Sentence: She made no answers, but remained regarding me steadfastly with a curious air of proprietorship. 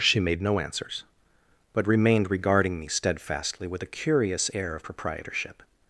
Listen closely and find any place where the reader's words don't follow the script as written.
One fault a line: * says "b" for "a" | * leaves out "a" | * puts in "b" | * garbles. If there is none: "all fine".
all fine